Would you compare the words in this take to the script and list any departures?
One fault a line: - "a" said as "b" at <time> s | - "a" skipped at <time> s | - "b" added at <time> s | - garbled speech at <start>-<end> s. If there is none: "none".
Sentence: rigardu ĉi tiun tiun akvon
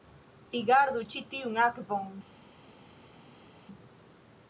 - "tiun" skipped at 1.6 s